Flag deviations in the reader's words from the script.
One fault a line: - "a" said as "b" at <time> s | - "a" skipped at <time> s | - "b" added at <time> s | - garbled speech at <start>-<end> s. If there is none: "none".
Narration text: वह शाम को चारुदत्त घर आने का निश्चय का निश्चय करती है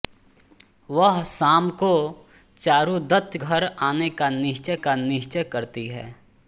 none